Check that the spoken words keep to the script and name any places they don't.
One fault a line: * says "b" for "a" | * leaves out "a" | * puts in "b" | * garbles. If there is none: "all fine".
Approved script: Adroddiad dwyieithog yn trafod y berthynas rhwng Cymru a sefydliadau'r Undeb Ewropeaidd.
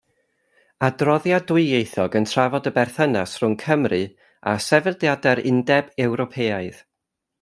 all fine